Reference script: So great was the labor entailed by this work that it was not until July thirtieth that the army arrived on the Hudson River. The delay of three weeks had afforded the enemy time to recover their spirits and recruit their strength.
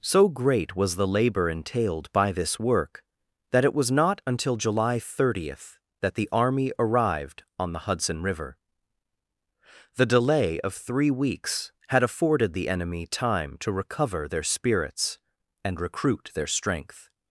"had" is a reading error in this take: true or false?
false